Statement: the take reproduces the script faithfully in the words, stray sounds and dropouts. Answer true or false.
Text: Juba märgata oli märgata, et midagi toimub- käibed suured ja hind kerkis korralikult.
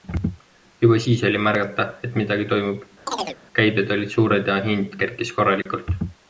false